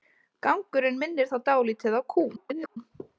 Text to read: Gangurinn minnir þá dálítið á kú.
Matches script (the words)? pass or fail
fail